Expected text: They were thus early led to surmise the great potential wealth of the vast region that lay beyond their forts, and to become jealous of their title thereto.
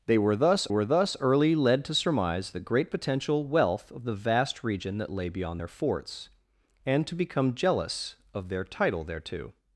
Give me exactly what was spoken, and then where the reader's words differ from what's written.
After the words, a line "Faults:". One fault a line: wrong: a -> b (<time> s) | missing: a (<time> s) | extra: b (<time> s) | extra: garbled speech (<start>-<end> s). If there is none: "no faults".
They were thus were thus early led to surmise the great potential wealth of the vast region that lay beyond their forts, and to become jealous of their title thereto.
Faults:
extra: were thus (0.7 s)